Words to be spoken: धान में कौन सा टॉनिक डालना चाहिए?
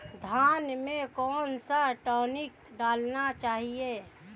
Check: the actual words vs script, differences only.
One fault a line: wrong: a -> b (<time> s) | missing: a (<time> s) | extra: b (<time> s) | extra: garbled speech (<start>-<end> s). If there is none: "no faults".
no faults